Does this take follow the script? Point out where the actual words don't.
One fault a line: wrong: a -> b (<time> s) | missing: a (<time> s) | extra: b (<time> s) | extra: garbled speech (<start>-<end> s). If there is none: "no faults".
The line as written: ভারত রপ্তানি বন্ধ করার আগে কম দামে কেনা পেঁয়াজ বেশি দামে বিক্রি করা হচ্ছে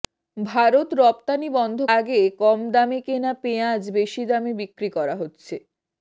missing: করার (1.8 s)